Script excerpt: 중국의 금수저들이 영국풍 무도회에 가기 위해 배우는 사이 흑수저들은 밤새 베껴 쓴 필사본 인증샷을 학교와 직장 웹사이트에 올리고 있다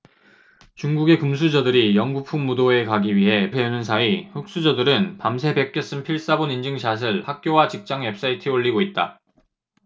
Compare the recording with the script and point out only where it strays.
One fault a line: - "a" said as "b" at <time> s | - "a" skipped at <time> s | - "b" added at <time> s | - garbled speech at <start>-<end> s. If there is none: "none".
none